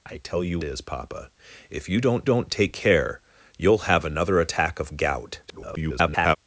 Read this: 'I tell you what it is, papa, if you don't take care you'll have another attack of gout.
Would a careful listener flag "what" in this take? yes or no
yes